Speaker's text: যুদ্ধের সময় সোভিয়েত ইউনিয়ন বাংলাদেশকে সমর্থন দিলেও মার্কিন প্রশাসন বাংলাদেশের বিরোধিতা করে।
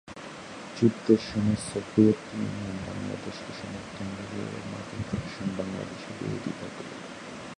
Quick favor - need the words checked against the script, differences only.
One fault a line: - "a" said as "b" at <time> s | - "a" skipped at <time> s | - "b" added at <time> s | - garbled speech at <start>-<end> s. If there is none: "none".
none